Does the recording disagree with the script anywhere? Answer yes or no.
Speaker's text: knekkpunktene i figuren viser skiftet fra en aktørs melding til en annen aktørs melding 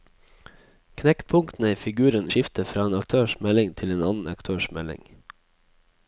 yes